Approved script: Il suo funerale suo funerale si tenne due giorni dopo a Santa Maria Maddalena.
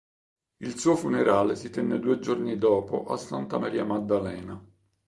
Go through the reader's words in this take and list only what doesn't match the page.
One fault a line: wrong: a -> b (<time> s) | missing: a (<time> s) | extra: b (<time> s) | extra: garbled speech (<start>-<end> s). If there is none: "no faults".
missing: suo funerale (1.6 s)